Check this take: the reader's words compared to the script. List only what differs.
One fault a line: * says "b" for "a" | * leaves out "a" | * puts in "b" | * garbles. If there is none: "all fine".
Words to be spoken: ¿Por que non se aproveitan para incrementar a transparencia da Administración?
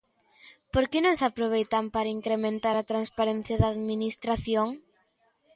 all fine